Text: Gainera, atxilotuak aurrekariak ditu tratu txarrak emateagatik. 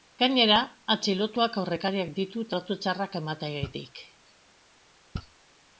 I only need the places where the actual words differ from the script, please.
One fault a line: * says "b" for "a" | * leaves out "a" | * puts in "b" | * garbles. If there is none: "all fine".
all fine